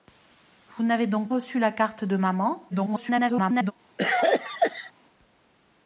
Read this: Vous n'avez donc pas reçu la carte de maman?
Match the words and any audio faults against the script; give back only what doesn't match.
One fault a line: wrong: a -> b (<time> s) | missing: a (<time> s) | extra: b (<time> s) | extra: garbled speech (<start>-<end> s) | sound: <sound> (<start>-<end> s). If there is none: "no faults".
missing: pas (1.3 s)
extra: garbled speech (2.7-3.7 s)
sound: cough (4.0-4.9 s)